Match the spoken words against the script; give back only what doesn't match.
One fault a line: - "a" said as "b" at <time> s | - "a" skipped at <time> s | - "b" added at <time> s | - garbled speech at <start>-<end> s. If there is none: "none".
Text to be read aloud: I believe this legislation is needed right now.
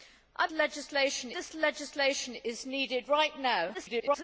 - "believe" said as "legislation" at 0.5 s
- garbled speech at 3.7-4.2 s